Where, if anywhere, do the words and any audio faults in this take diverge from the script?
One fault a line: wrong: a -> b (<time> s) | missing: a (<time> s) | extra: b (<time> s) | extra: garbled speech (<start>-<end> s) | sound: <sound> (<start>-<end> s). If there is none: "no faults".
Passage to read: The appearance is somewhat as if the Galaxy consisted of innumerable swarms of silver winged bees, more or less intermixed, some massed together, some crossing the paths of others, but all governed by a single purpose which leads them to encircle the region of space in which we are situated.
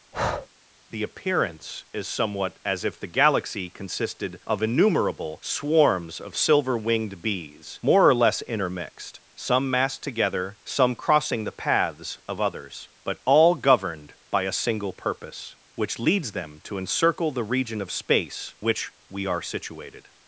sound: breath (0.1-0.5 s)
missing: in (18.6 s)